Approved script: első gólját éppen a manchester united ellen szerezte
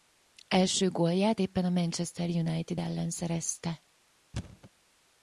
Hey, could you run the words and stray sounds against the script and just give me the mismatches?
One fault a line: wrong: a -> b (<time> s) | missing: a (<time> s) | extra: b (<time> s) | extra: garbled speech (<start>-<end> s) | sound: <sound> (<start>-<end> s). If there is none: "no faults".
sound: thud (4.3-4.7 s)